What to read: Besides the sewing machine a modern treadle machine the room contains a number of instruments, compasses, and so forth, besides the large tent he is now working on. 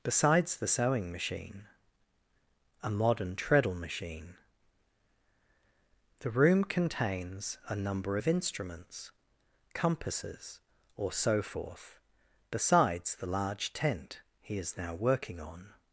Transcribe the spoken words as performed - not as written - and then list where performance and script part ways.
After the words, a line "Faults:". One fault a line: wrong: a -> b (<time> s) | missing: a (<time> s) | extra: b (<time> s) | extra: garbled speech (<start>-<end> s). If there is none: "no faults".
Besides the sewing machine a modern treadle machine the room contains a number of instruments, compasses, or so forth, besides the large tent he is now working on.
Faults:
wrong: and -> or (10.9 s)